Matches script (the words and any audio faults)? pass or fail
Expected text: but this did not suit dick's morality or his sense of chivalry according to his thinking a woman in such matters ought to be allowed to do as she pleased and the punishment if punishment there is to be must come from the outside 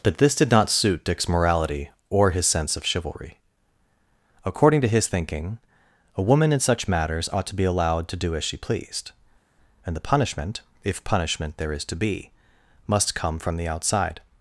pass